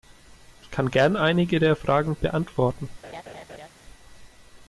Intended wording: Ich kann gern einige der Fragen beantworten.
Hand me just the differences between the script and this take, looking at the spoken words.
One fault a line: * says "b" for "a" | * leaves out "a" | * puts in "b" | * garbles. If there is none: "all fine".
all fine